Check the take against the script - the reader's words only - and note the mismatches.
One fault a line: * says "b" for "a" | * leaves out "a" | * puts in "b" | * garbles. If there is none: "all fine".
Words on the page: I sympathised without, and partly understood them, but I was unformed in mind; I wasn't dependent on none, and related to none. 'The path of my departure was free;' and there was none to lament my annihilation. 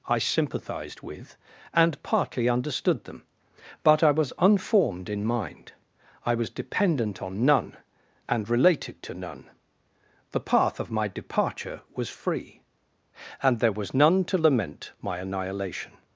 * says "with" for "without"
* says "was" for "wasn't"